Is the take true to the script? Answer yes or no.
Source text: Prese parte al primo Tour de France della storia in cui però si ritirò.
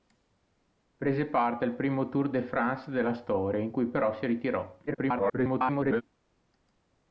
no